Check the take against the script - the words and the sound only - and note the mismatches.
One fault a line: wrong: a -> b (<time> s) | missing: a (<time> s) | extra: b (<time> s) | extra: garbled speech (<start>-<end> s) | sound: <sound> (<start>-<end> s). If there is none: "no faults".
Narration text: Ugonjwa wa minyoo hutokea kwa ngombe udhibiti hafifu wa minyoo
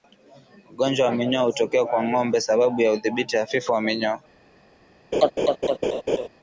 extra: sababu ya (2.4 s)
sound: laugh (5.1-6.3 s)